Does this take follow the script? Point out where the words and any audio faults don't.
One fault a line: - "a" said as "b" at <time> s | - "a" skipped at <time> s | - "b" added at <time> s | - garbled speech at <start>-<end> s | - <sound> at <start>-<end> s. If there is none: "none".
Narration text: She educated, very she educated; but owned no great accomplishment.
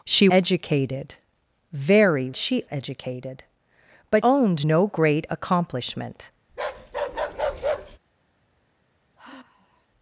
- bark at 6.5-8.0 s
- sigh at 9.2-9.9 s